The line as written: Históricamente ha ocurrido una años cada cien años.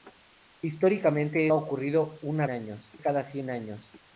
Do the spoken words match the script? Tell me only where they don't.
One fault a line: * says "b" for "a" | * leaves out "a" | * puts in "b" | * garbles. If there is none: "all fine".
all fine